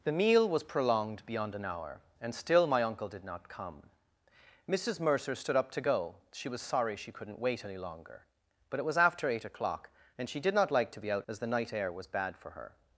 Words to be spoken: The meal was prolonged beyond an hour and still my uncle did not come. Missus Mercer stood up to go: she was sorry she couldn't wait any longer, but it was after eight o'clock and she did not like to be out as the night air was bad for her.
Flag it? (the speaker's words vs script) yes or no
no